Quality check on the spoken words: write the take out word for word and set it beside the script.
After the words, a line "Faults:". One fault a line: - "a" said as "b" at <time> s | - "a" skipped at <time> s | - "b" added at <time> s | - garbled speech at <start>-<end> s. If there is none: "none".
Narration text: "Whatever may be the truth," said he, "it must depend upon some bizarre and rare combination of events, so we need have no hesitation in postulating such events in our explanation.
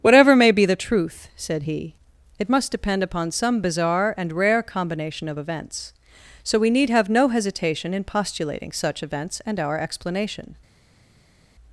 "Whatever may be the truth," said he, "it must depend upon some bizarre and rare combination of events, so we need have no hesitation in postulating such events and our explanation.
Faults:
- "in" said as "and" at 9.5 s